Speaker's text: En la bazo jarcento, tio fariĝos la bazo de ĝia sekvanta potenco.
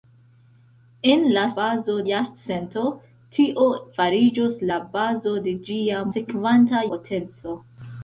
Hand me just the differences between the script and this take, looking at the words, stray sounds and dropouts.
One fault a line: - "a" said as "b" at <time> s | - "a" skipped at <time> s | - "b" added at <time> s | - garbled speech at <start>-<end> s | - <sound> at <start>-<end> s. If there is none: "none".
none